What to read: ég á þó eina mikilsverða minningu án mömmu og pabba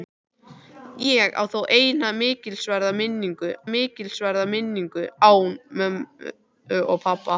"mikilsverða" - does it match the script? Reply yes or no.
yes